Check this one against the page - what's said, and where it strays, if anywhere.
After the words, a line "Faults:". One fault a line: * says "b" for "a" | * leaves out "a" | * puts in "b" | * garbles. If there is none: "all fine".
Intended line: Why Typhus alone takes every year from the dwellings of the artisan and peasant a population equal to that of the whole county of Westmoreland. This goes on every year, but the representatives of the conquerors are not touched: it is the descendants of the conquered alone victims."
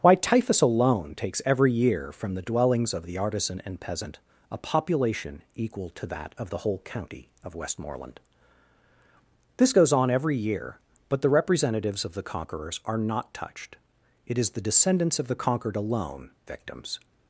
Why Typhus alone takes every year from the dwellings of the artisan and peasant a population equal to that of the whole county of Westmoreland. This goes on every year, but the representatives of the conquerors are not touched: it is the descendants of the conquered alone victims."
Faults:
all fine